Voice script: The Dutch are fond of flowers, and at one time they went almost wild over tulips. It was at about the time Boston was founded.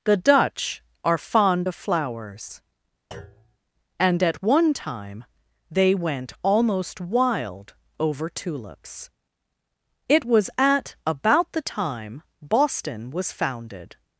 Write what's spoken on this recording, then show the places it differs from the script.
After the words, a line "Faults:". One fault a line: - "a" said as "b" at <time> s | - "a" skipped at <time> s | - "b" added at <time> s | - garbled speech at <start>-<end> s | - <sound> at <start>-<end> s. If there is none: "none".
The Dutch are fond of flowers, and at one time they went almost wild over tulips. It was at about the time Boston was founded.
Faults:
- thud at 3.1-3.6 s